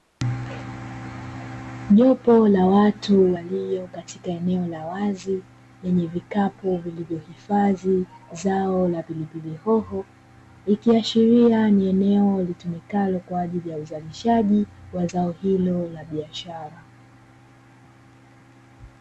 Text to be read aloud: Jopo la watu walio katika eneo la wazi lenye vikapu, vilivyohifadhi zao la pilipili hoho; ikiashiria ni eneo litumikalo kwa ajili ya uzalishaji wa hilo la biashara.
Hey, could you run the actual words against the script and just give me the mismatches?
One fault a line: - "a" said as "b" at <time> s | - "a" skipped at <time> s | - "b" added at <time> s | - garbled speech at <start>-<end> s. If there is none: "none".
- "zao" added at 15.0 s